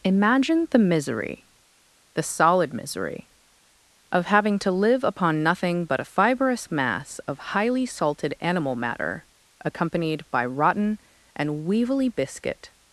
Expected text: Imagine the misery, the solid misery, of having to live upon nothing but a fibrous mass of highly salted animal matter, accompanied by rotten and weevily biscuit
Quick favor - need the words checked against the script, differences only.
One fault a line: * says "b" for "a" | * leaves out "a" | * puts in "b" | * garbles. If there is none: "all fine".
all fine